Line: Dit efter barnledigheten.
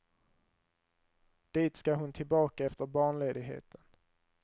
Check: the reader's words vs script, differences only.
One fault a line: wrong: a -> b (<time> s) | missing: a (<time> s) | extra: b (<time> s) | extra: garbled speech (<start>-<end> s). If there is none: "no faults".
extra: ska hon tillbaka (1.7 s)